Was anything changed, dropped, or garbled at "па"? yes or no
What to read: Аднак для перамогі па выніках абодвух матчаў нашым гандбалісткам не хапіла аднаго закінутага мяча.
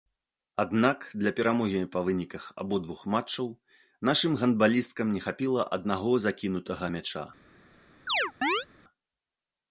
no